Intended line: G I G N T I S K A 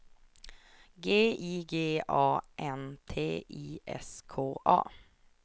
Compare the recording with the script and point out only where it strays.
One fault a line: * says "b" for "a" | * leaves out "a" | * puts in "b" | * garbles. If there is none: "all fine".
* puts in "A"